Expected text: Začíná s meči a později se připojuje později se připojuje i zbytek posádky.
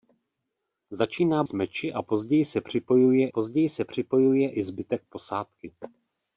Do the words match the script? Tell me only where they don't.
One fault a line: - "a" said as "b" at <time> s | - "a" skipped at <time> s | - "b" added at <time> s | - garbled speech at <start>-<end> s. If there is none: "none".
none